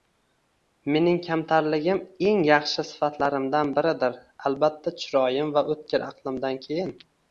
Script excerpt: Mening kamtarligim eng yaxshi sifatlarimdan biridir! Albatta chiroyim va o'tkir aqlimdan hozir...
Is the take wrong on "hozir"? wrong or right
wrong